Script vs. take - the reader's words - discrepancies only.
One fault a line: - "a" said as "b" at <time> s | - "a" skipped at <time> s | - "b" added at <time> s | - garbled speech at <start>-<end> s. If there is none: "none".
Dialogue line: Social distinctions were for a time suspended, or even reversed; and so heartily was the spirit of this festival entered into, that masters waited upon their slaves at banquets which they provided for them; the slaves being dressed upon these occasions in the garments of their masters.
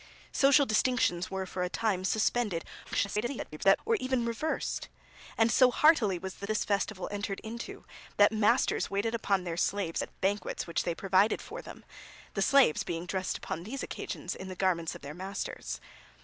- garbled speech at 2.8-3.8 s
- "spirit of" skipped at 6.5 s